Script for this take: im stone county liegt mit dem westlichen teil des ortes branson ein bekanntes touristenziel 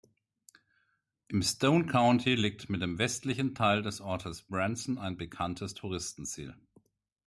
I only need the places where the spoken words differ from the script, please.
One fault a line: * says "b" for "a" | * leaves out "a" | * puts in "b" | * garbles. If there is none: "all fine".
all fine